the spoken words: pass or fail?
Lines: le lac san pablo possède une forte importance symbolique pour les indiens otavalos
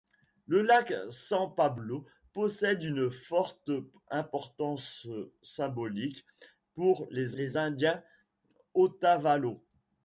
fail